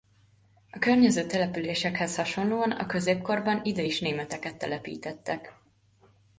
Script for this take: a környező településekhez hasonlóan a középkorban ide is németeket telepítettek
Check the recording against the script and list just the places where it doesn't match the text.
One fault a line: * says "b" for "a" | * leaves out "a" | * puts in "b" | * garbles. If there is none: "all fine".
all fine